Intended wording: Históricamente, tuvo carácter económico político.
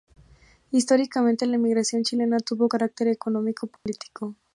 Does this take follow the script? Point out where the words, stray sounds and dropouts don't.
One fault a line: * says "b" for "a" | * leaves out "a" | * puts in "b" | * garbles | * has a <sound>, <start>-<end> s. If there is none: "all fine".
* puts in "la emigración chilena"
* has a dropout, 3.8-3.9 s